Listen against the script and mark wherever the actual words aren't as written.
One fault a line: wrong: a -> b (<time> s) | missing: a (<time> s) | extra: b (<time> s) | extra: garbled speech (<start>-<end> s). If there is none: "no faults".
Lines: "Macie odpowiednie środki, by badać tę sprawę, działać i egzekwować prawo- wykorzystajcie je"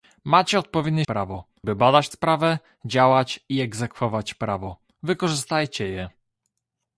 wrong: środki -> prawo (1.0 s)
missing: tę (2.1 s)